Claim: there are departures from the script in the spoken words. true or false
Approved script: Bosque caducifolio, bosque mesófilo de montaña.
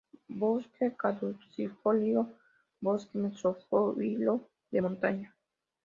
false